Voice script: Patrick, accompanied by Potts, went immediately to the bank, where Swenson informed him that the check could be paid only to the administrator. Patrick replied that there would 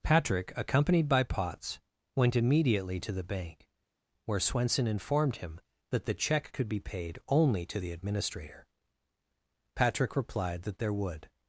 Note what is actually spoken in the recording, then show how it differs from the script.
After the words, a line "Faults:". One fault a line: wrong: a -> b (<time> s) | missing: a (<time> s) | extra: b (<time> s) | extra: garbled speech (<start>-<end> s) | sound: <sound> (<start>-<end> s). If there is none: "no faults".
Patrick, accompanied by Potts, went immediately to the bank, where Swenson informed him that the check could be paid only to the administrator. Patrick replied that there would
Faults:
no faults